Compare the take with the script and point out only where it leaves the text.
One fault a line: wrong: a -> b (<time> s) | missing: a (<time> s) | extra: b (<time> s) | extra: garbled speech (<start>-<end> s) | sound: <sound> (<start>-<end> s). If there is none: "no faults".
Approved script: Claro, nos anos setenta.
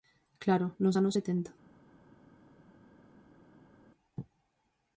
no faults